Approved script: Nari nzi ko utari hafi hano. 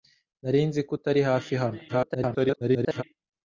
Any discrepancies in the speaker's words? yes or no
yes